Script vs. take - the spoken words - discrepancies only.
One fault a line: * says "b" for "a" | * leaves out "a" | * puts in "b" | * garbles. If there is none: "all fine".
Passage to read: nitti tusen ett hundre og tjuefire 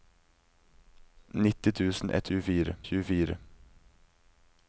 * says "tjuefire" for "hundre"